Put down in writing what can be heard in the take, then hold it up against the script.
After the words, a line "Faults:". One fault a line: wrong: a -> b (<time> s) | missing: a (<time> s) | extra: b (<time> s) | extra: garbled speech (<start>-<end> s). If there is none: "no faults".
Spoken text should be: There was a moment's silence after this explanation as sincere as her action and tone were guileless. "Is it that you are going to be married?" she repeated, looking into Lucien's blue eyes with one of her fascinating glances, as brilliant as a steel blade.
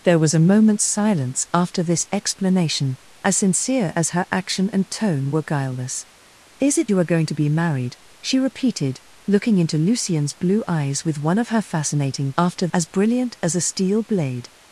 There was a moment's silence after this explanation as sincere as her action and tone were guileless. "Is it you are going to be married?" she repeated, looking into Lucien's blue eyes with one of her fascinating after, as brilliant as a steel blade.
Faults:
missing: that (6.9 s)
wrong: glances -> after (12.4 s)